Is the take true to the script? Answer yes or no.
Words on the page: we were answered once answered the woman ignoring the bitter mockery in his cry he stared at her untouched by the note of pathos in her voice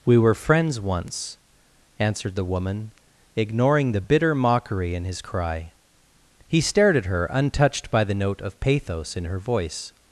no